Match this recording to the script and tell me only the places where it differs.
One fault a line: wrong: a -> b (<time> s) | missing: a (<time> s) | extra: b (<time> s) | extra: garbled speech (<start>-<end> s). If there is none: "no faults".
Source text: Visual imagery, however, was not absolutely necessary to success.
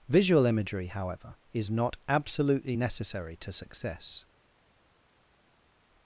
wrong: was -> is (1.5 s)